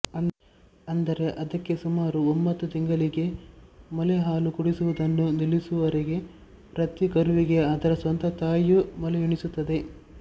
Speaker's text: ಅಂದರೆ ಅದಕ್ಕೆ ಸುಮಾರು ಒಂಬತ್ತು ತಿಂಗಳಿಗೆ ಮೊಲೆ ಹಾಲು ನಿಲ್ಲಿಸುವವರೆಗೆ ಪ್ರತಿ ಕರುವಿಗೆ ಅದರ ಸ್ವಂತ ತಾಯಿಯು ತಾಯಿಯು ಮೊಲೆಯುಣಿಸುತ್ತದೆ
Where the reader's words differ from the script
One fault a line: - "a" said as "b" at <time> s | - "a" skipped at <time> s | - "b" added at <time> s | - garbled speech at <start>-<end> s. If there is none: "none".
- "ಕುಡಿಸುವುದನ್ನು" added at 4.5 s
- "ತಾಯಿಯು" skipped at 8.8 s